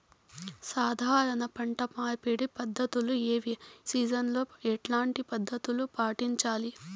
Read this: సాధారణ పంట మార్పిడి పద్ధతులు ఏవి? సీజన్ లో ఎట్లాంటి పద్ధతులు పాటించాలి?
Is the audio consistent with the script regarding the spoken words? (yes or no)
yes